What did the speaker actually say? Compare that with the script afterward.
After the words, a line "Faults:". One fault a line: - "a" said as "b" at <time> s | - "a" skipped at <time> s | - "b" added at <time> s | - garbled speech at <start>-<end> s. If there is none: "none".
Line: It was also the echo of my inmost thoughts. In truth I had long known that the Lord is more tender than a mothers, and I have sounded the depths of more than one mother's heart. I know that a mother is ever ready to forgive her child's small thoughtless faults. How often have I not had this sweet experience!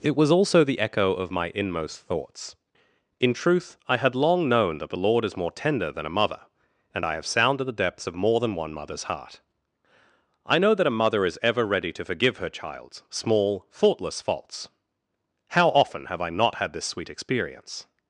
It was also the echo of my inmost thoughts. In truth I had long known that the Lord is more tender than a mother, and I have sounded the depths of more than one mother's heart. I know that a mother is ever ready to forgive her child's small thoughtless faults. How often have I not had this sweet experience!
Faults:
- "mothers" said as "mother" at 6.2 s